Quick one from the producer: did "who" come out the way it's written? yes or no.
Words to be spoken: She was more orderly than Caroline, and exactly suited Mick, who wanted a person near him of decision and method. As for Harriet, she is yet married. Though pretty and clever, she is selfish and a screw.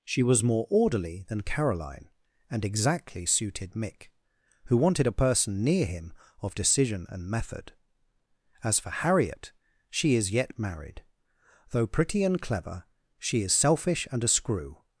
yes